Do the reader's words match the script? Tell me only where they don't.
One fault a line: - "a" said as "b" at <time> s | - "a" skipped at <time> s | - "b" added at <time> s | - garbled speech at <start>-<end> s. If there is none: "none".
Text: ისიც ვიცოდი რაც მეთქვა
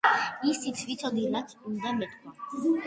- "უნდა" added at 1.7 s